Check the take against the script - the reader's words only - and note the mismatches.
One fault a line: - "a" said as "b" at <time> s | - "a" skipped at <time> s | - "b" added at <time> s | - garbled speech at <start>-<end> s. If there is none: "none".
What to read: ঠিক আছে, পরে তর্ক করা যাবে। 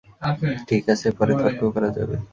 none